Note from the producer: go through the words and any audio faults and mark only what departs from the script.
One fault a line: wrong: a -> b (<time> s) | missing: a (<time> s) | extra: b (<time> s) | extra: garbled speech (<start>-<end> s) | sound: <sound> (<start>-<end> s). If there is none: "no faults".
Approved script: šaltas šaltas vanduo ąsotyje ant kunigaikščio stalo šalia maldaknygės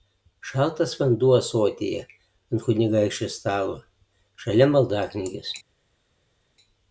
missing: šaltas (0.9 s)